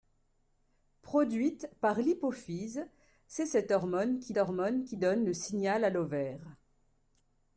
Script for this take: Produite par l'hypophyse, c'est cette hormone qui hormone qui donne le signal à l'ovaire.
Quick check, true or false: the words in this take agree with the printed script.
true